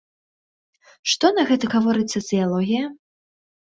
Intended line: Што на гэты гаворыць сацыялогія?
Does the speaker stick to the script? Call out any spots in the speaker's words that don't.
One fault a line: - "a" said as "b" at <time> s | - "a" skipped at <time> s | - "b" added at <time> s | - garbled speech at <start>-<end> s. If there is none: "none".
none